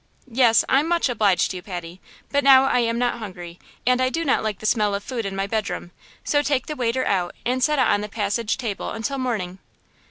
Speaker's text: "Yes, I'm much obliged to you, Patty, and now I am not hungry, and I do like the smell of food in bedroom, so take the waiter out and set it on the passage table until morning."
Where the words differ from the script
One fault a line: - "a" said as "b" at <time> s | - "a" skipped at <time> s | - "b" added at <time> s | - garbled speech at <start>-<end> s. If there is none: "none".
- "and" said as "but" at 2.3 s
- "not" added at 4.2 s
- "my" added at 5.3 s